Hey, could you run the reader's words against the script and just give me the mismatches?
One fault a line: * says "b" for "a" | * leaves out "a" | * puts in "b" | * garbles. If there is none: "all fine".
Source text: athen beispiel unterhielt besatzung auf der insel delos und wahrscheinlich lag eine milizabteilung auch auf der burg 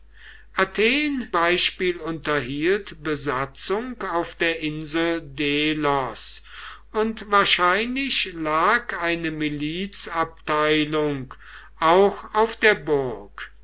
all fine